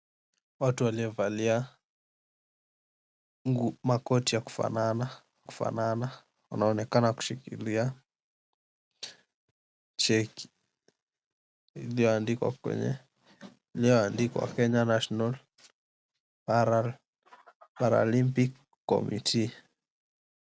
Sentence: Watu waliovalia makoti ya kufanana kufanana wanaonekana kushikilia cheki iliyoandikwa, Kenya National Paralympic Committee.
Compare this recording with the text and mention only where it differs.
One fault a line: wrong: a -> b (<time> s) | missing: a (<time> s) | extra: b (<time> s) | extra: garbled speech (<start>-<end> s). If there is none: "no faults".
no faults